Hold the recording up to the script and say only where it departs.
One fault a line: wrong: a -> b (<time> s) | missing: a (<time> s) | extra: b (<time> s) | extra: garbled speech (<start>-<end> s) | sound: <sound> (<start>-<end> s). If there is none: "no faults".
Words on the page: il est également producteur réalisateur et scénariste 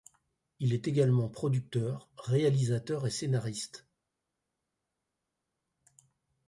no faults